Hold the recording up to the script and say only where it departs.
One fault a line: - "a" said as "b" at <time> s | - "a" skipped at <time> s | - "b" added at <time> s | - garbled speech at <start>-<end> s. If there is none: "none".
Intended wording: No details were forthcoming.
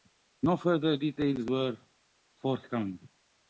- "further" added at 0.6 s